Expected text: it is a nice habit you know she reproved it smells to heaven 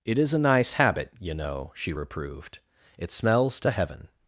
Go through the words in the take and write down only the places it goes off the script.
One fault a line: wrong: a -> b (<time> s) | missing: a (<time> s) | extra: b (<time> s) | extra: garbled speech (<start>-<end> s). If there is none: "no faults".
no faults